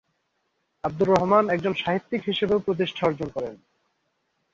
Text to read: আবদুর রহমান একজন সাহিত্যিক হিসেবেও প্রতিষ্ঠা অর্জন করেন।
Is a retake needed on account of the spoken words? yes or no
no